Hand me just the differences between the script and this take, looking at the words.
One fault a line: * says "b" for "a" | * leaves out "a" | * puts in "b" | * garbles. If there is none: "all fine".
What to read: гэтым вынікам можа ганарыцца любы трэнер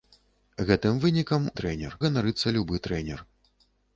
* says "трэнер" for "можа"